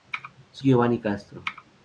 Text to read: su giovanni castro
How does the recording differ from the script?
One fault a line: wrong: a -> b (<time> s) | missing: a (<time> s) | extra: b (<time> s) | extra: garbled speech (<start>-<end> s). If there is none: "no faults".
no faults